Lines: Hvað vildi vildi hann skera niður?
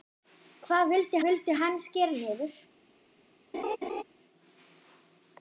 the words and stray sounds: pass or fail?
fail